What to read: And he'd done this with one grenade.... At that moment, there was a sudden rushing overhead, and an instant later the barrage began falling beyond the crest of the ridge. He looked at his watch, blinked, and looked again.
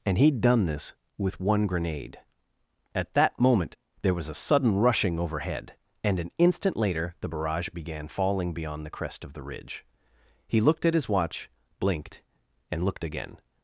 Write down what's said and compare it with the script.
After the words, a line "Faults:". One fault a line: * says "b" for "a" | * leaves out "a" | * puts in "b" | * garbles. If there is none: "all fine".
And he'd done this with one grenade.... At that moment, there was a sudden rushing overhead, and an instant later the barrage began falling beyond the crest of the ridge. He looked at his watch, blinked, and looked again.
Faults:
all fine